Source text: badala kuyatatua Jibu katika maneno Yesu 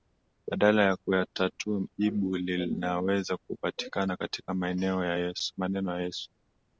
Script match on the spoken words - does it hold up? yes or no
no